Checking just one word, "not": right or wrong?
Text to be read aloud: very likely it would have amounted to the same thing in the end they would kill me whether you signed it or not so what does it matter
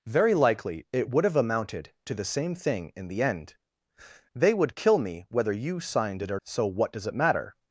wrong